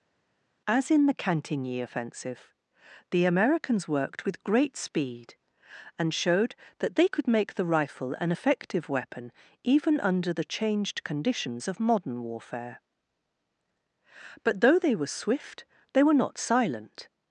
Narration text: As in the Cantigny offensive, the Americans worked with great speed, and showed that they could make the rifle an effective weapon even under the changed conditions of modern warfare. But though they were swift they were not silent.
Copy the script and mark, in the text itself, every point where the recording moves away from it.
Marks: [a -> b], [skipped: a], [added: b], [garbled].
As in the Cantigny offensive, the Americans worked with great speed, and showed that they could make the rifle an effective weapon even under the changed conditions of modern warfare. But though they were swift they were not silent.